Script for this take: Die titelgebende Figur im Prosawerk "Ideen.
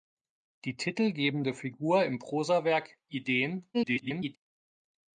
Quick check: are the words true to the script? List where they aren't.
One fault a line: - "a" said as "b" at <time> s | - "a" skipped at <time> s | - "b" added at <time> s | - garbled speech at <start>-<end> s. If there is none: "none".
- garbled speech at 3.7-4.4 s